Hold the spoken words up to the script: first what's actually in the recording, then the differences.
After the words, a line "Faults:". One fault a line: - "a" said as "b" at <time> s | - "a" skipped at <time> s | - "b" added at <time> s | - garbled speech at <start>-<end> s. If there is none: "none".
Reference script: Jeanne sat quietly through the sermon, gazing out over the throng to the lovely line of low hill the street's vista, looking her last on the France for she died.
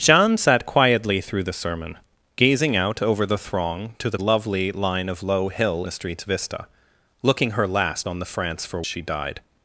Jeanne sat quietly through the sermon, gazing out over the throng to the lovely line of low hill the street's vista, looking her last on the France for she died.
Faults:
none